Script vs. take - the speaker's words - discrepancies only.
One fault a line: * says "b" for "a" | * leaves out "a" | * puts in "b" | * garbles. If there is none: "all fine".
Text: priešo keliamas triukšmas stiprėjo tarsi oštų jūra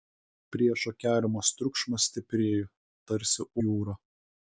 * leaves out "oštų"